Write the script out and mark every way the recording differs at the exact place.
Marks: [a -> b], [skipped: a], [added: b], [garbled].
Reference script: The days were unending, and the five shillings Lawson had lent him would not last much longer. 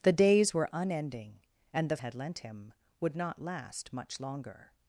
The days were unending, and the [skipped: five shillings Lawson] had lent him would not last much longer.